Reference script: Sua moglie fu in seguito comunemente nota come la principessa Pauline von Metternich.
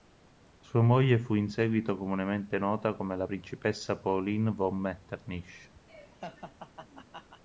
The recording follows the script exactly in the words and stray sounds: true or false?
false